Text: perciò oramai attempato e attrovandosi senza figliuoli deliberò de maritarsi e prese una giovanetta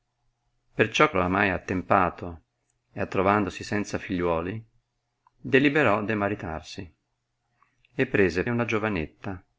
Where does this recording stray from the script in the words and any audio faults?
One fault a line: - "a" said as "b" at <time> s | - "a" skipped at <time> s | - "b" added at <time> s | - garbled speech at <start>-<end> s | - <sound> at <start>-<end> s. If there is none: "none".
none